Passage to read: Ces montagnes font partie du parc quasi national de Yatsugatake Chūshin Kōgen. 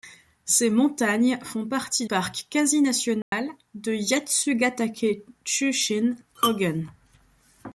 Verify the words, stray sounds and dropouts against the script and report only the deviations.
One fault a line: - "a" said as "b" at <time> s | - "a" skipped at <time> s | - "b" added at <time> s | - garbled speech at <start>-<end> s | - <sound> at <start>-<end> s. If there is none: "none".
- "du" skipped at 2.1 s
- dropout at 3.2-3.3 s